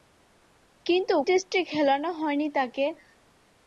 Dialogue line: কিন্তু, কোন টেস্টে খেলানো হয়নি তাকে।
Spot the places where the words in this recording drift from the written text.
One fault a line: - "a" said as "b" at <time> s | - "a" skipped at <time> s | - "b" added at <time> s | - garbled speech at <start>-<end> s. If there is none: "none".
- "কোন" skipped at 1.1 s